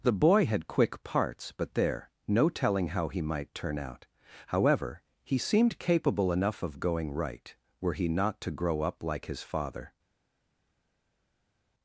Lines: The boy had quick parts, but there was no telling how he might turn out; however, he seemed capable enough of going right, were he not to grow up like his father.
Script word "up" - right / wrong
right